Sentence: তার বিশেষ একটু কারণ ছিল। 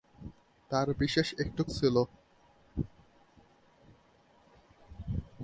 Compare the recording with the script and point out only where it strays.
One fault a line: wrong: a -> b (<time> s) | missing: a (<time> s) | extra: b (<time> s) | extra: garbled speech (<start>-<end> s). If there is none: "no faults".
missing: কারণ (1.6 s)